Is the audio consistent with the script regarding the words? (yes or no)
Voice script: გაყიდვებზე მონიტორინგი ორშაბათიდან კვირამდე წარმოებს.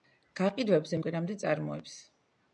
no